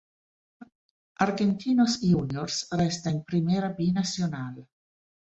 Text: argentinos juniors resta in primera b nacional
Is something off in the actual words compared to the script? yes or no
no